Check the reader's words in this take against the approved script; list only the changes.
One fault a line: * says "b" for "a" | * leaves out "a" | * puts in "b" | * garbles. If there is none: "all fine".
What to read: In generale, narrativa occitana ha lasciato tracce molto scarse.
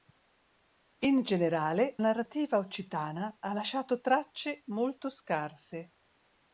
all fine